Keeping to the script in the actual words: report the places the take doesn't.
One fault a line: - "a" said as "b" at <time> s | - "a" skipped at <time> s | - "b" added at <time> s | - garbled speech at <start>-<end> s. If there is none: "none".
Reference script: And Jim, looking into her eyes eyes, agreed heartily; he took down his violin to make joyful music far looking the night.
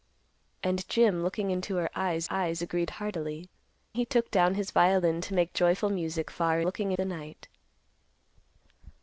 none